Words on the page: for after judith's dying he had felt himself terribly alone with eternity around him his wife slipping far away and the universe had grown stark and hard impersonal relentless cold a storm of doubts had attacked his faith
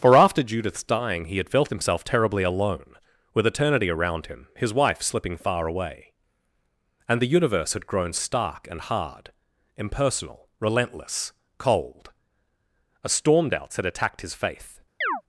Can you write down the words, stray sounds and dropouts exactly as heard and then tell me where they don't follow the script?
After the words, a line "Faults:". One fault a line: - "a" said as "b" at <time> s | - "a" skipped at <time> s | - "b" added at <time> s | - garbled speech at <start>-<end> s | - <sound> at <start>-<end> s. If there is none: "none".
for after judith's dying he had felt himself terribly alone with eternity around him his wife slipping far away and the universe had grown stark and hard impersonal relentless cold a storm doubts had attacked his faith
Faults:
- "of" skipped at 13.5 s
- chirp at 15.0-15.2 s